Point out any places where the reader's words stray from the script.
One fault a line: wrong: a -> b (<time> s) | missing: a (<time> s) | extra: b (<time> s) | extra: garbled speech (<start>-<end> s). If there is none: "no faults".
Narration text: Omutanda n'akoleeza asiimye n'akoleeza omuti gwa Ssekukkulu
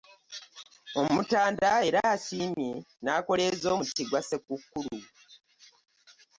wrong: n'akoleeza -> era (1.9 s)